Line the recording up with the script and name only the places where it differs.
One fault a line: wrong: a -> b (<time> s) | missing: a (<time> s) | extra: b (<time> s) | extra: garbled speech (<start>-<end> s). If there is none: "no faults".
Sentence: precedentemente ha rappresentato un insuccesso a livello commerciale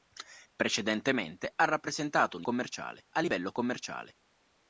wrong: insuccesso -> commerciale (2.4 s)